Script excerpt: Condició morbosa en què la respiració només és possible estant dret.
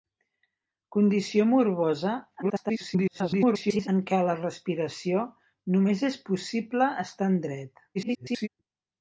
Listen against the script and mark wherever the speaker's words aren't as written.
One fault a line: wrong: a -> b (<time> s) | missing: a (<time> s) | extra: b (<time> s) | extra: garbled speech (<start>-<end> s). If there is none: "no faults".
extra: garbled speech (2.4-3.9 s)
extra: garbled speech (7.9-8.5 s)